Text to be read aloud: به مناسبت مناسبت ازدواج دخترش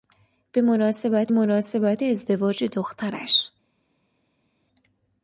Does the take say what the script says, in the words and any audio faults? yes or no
yes